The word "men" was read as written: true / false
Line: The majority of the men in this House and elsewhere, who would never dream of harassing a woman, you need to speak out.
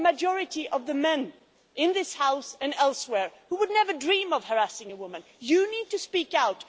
true